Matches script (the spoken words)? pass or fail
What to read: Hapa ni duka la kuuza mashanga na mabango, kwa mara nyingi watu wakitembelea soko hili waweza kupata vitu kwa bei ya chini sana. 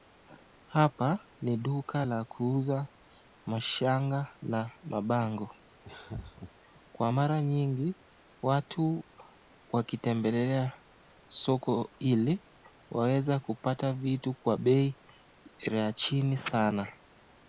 pass